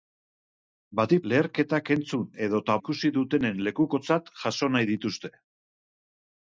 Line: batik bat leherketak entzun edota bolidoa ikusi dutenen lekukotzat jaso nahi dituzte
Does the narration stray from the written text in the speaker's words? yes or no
yes